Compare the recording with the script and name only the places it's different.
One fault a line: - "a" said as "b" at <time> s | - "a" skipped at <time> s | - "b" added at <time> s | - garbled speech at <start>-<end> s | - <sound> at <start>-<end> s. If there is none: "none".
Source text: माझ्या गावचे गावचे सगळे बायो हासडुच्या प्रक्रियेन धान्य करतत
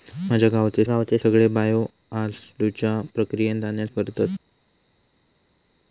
none